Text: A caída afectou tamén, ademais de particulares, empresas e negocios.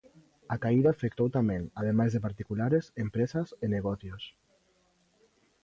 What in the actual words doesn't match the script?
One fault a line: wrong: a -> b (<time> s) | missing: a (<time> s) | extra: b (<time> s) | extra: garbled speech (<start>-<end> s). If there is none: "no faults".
no faults